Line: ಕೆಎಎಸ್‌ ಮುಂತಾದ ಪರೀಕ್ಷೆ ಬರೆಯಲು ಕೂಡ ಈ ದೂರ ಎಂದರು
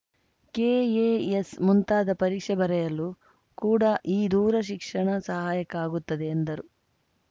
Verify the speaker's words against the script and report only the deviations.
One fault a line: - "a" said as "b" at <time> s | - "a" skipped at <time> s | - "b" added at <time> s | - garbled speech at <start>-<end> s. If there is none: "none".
- "ಶಿಕ್ಷಣ ಸಹಾಯಕ ಆಗುತ್ತದೆ" added at 4.6 s